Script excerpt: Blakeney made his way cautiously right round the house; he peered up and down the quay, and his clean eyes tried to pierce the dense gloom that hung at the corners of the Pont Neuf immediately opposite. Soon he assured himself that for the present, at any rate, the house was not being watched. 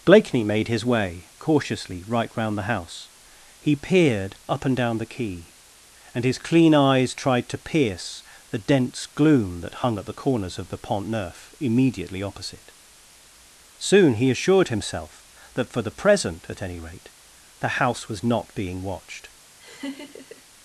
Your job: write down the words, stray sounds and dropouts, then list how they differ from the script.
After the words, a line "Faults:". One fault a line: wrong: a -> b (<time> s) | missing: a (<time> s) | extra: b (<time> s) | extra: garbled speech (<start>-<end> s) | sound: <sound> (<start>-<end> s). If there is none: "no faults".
Blakeney made his way cautiously right round the house; he peered up and down the quay, and his clean eyes tried to pierce the dense gloom that hung at the corners of the Pont Neuf immediately opposite. Soon he assured himself that for the present, at any rate, the house was not being watched.
Faults:
sound: laugh (19.6-20.4 s)